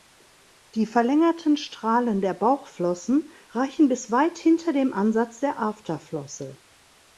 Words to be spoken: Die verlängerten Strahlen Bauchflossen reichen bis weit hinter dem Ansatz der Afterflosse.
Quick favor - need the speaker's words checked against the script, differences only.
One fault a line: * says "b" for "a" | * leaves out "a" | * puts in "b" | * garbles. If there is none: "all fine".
* puts in "der"